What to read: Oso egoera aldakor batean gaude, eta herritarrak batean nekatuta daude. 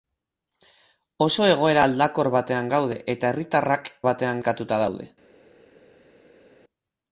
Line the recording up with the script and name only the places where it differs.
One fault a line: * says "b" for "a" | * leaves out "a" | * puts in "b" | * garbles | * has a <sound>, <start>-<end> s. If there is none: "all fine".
all fine